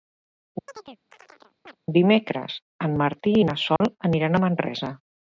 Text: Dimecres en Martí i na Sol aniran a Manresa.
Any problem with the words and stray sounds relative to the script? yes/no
yes